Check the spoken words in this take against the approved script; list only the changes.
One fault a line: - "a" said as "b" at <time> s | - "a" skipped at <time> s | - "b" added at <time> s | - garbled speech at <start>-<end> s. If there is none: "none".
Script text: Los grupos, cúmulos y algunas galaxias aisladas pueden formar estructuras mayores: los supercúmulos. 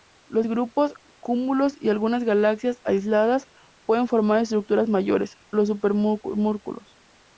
none